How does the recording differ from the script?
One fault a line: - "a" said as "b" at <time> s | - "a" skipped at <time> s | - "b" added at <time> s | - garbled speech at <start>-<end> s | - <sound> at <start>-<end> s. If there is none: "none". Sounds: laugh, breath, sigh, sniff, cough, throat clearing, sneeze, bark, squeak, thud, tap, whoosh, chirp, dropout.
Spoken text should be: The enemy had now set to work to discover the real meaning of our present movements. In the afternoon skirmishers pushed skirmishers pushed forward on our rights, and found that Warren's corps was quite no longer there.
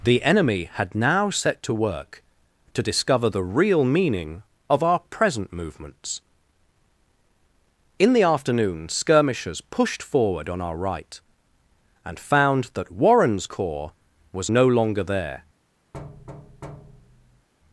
- "skirmishers pushed" skipped at 10.0 s
- "rights" said as "right" at 10.8 s
- "quite" skipped at 14.5 s
- thud at 15.9-17.5 s